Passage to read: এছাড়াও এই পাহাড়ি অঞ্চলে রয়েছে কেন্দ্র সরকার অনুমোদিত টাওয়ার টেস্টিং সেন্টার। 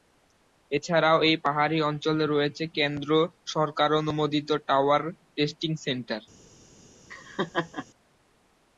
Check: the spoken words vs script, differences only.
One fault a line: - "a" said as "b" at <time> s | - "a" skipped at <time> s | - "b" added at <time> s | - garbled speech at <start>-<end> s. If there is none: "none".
none